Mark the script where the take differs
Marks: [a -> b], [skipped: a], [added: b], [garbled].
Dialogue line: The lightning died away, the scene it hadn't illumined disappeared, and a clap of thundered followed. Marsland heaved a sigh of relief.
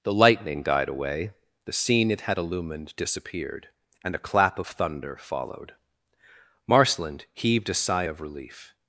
The lightning died away, the scene it [hadn't -> had] illumined disappeared, and a clap of [thundered -> thunder] followed. Marsland heaved a sigh of relief.